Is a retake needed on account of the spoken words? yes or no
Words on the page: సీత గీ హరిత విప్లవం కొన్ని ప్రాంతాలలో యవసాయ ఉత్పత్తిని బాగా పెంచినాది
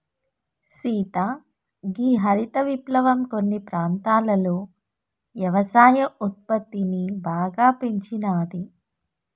no